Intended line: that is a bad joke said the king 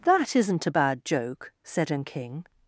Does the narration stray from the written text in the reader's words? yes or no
yes